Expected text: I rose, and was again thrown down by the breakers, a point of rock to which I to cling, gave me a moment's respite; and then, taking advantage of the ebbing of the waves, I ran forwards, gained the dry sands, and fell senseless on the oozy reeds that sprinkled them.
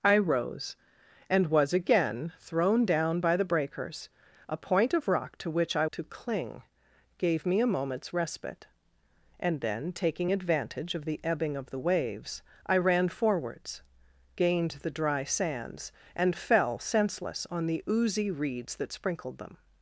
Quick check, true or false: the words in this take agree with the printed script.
true